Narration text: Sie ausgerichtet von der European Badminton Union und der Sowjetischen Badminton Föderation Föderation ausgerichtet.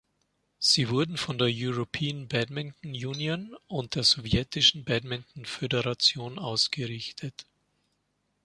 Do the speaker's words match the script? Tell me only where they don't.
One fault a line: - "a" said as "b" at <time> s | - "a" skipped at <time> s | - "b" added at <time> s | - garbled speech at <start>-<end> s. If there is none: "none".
- "ausgerichtet" said as "wurden" at 0.9 s
- "Föderation" skipped at 6.4 s